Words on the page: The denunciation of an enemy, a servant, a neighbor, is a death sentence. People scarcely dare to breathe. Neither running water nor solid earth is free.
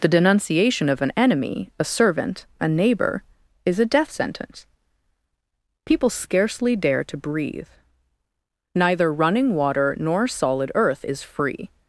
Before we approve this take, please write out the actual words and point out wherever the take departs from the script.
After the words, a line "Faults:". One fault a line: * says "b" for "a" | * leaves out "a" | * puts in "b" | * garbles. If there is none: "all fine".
The denunciation of an enemy, a servant, a neighbor, is a death sentence. People scarcely dare to breathe. Neither running water nor solid earth is free.
Faults:
all fine